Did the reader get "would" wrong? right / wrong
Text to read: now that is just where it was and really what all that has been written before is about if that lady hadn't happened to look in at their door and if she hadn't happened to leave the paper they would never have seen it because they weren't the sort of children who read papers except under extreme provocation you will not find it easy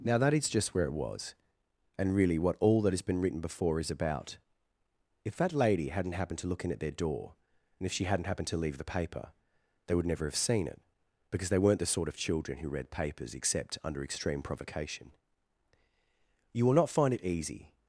right